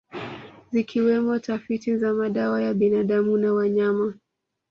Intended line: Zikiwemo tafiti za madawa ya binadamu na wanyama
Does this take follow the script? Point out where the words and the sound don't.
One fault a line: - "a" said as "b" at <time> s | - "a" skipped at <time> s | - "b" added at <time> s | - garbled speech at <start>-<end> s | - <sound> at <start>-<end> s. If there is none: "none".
none